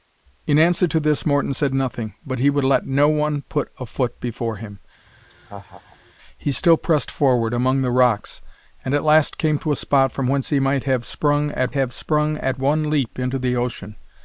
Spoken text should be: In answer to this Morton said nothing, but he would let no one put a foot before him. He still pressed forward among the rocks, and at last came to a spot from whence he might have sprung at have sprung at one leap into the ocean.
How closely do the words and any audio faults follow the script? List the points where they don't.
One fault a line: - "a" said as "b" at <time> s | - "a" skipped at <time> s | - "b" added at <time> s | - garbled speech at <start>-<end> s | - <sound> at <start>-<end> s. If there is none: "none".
- laugh at 5.1-6.1 s